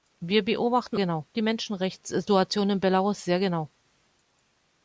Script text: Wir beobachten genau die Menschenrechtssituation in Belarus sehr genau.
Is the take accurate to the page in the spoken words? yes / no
yes